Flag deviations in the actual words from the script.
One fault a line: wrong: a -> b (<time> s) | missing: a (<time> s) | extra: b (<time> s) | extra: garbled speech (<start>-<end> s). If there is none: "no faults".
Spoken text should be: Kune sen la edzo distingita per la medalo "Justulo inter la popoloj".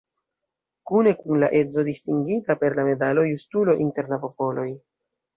wrong: sen -> kun (1.2 s)